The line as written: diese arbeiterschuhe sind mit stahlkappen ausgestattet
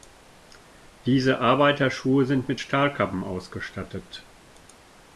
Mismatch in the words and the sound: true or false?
false